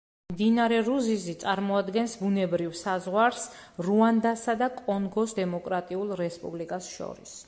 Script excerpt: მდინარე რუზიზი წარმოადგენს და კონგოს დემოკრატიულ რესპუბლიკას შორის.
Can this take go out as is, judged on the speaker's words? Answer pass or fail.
fail